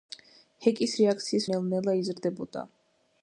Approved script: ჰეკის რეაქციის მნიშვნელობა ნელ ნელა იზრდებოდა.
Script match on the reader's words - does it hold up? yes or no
no